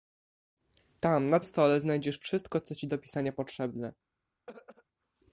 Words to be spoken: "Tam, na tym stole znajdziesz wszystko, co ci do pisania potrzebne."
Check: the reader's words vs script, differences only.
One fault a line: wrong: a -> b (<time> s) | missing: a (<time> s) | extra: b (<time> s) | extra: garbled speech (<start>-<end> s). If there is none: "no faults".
missing: tym (1.4 s)